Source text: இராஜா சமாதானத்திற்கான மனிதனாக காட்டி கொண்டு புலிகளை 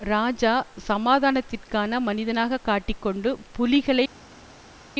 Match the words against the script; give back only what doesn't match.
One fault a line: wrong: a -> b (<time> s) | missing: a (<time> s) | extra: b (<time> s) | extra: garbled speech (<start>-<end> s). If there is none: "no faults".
no faults